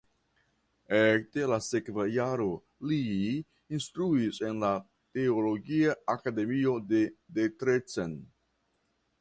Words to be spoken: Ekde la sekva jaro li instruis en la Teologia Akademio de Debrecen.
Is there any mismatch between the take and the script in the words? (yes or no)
no